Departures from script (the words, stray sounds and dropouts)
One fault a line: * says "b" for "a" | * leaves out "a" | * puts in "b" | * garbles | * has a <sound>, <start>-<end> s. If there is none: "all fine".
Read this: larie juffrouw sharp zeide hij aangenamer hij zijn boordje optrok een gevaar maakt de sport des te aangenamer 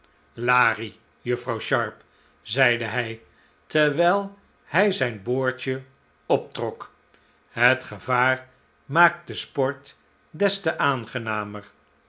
* says "terwijl" for "aangenamer"
* says "het" for "een"